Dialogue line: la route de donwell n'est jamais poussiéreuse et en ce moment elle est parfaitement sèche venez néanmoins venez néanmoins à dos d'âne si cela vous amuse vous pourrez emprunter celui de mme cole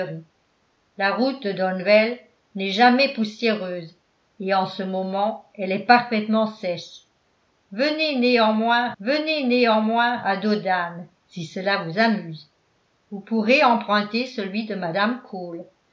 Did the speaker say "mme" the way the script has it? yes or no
yes